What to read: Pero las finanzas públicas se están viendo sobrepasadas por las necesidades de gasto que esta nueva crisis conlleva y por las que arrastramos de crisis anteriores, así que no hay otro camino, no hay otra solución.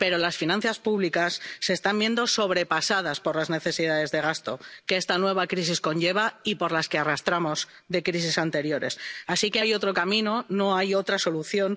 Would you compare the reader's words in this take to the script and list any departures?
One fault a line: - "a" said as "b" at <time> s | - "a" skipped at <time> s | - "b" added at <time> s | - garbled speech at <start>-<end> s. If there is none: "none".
- "no" skipped at 9.6 s